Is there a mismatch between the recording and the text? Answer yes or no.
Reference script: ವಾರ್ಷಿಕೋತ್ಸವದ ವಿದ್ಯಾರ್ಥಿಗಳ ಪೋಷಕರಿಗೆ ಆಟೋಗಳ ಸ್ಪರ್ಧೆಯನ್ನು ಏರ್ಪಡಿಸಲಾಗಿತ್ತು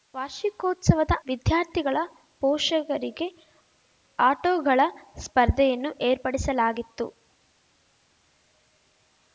no